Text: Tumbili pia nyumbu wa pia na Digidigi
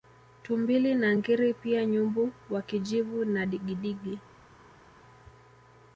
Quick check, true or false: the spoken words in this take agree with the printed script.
false